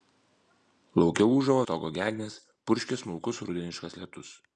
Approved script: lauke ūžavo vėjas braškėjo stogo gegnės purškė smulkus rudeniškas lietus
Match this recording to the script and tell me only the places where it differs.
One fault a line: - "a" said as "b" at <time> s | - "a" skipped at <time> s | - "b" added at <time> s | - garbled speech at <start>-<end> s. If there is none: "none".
- "vėjas braškėjo" skipped at 1.6 s